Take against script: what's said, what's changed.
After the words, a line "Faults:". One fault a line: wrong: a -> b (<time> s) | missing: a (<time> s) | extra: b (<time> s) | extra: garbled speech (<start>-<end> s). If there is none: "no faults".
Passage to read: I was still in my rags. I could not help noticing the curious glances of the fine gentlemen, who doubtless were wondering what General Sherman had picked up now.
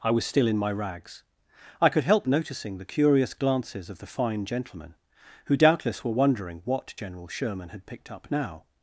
I was still in my rags. I could help noticing the curious glances of the fine gentlemen, who doubtless were wondering what General Sherman had picked up now.
Faults:
missing: not (2.0 s)